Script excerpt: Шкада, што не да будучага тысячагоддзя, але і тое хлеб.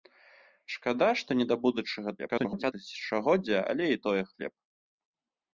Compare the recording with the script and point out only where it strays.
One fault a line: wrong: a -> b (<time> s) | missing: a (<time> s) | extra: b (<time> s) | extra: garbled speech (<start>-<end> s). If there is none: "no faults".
extra: garbled speech (2.2-2.7 s)